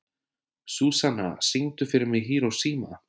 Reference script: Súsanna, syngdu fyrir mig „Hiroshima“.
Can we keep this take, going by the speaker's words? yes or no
yes